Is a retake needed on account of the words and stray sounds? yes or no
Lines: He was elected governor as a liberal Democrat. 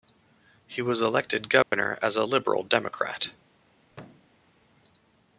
yes